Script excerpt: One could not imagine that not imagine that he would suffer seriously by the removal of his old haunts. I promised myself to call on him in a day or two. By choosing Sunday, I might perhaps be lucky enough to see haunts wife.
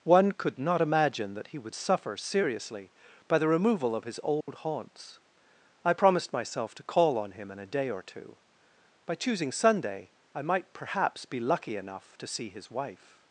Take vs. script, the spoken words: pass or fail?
fail